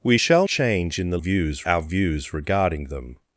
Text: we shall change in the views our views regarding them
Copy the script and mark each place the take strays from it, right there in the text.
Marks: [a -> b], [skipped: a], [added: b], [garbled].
we shall change in the views our views regarding them